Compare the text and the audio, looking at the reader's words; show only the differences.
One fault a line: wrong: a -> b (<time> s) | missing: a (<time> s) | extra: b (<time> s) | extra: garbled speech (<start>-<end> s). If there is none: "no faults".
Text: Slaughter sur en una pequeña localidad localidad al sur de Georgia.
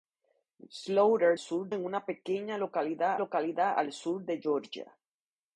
no faults